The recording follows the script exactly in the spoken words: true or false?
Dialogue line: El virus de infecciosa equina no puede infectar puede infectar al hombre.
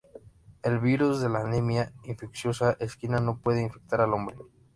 false